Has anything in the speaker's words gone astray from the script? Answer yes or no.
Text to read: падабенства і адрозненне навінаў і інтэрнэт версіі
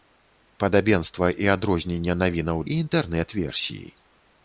no